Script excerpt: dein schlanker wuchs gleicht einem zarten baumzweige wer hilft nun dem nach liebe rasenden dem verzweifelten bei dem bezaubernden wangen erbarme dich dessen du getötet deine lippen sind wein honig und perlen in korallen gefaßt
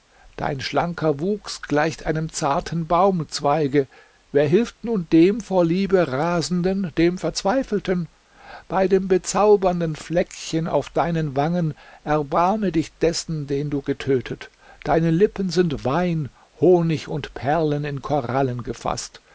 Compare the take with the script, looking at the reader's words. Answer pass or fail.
fail